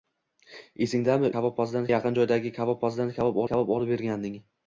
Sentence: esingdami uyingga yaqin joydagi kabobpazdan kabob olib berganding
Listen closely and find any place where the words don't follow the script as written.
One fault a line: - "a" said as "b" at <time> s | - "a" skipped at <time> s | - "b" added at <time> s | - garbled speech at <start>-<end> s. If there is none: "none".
- "uyingga" said as "kabobpazdan" at 1.4 s
- "kabob" added at 3.5 s